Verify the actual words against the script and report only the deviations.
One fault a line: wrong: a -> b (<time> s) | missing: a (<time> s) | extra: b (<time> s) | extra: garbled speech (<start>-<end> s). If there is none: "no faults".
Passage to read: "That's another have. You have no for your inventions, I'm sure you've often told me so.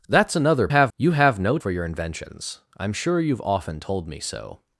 no faults